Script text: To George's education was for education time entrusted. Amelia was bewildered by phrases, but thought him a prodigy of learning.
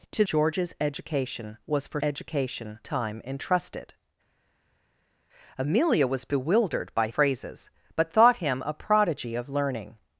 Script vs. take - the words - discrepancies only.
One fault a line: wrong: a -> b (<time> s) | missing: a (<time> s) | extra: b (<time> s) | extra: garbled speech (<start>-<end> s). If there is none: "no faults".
no faults